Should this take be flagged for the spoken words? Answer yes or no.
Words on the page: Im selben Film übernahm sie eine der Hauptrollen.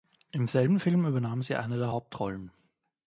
no